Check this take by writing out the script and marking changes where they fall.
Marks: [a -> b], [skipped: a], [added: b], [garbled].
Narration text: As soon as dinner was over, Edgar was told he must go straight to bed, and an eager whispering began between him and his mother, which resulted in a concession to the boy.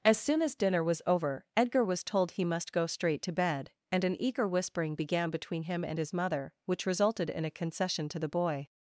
As soon as dinner was over, Edgar was told he must go straight to bed, and an eager whispering began between him and his mother, which resulted in a concession to the boy.